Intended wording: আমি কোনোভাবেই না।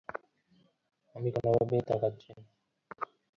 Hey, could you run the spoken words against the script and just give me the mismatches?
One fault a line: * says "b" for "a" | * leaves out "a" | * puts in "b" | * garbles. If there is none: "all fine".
* puts in "তাকাচ্ছি"